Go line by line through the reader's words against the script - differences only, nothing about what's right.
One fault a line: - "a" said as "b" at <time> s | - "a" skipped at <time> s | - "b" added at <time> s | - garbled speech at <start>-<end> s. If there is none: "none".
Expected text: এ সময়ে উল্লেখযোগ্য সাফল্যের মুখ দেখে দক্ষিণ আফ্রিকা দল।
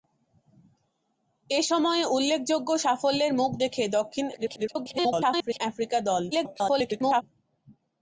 - garbled speech at 4.3-5.6 s
- garbled speech at 6.3-7.2 s